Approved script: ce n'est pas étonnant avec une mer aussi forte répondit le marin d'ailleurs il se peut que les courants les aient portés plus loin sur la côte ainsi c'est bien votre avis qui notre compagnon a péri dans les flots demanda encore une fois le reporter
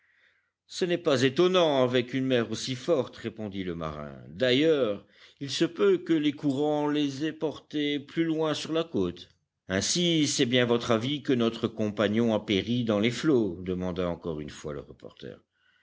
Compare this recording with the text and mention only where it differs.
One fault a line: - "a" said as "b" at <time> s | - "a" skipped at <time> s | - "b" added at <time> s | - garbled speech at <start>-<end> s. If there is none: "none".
- "qui" said as "que" at 11.2 s